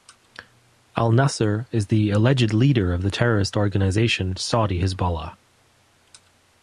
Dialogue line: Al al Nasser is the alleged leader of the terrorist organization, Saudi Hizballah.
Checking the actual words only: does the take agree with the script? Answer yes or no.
no